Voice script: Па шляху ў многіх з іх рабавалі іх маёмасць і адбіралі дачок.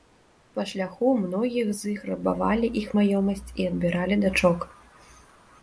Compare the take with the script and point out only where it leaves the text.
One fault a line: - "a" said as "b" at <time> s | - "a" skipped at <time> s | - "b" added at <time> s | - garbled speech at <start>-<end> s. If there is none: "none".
none